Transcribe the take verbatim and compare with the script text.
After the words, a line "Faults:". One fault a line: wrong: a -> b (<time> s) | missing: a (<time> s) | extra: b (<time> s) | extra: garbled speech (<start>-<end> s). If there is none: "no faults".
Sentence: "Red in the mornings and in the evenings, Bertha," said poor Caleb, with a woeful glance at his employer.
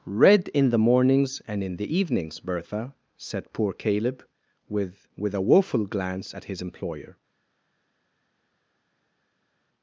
"Red in the mornings and in the evenings, Bertha," said poor Caleb, with with a woeful glance at his employer.
Faults:
extra: with (5.2 s)